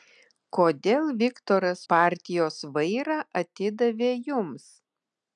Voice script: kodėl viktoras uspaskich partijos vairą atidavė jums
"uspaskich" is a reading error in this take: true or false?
true